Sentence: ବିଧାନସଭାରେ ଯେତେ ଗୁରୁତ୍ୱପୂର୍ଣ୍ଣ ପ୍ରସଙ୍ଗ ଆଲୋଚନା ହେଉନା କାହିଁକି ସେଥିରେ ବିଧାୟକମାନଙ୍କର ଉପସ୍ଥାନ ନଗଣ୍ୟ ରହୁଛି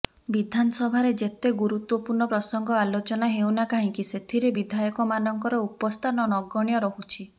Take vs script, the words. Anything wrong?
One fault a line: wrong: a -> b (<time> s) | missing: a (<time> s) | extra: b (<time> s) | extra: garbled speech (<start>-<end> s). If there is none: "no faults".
no faults